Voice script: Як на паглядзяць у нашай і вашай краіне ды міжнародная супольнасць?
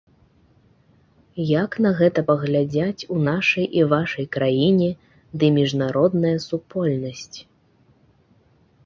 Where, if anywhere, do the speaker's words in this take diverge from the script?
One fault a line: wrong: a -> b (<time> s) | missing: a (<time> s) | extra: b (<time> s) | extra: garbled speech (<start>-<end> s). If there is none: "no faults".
extra: гэта (2.0 s)